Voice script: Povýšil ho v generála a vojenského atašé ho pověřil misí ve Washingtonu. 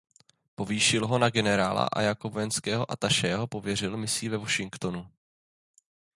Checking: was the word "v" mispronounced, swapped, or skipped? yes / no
yes